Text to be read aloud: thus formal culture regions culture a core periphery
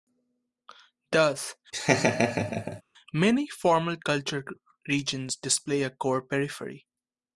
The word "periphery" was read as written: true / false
true